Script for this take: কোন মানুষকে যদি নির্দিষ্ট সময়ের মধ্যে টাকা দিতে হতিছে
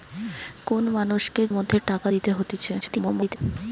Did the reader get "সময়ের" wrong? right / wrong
wrong